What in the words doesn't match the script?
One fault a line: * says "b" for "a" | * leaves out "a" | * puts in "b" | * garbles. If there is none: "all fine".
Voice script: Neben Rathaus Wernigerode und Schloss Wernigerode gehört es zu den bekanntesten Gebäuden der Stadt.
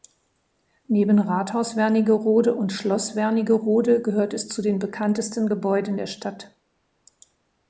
all fine